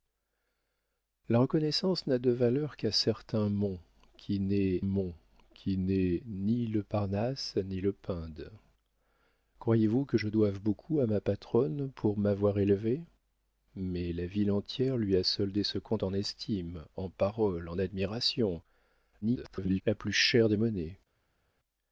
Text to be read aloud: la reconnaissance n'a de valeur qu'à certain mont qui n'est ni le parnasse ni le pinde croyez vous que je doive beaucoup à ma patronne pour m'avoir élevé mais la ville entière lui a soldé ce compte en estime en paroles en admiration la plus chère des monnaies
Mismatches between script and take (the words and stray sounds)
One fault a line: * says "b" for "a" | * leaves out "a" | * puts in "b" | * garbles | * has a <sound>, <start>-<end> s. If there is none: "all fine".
* puts in "mont qui n'est"
* garbles